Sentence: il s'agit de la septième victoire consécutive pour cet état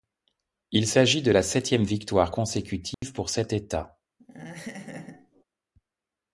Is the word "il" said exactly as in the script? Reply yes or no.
yes